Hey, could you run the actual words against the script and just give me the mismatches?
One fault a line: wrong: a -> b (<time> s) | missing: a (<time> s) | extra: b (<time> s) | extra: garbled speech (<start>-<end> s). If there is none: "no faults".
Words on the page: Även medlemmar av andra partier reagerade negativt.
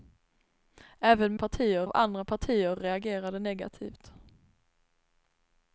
wrong: medlemmar -> partier (1.4 s)